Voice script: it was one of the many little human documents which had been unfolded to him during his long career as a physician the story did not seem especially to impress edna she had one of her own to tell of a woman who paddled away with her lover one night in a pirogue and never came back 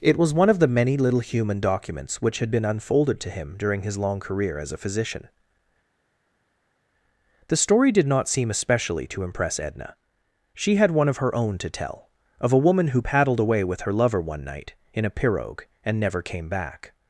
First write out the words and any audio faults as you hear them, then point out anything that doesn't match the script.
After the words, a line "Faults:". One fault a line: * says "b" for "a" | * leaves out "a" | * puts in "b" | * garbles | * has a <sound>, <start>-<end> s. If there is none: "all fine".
it was one of the many little human documents which had been unfolded to him during his long career as a physician the story did not seem especially to impress edna she had one of her own to tell of a woman who paddled away with her lover one night in a pirogue and never came back
Faults:
all fine